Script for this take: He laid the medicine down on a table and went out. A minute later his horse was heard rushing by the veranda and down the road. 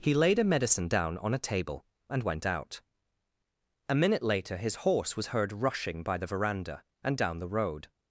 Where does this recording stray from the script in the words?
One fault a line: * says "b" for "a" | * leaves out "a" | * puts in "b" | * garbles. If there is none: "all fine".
* says "a" for "the"